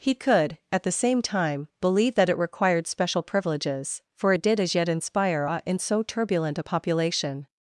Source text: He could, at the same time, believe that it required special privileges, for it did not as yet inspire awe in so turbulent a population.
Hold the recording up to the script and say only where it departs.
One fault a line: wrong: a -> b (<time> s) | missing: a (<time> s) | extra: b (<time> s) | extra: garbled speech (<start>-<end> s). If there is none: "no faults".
missing: not (4.6 s)